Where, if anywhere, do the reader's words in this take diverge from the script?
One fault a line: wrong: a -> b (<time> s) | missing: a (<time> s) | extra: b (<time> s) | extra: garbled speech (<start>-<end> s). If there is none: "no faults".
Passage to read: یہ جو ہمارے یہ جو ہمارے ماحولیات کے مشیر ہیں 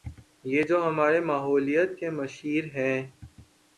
missing: یہ جو ہمارے (1.2 s)